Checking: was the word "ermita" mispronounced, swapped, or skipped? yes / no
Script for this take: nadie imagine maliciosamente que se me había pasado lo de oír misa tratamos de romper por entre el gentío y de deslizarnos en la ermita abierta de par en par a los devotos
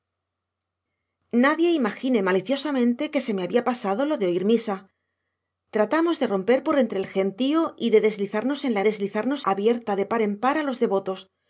yes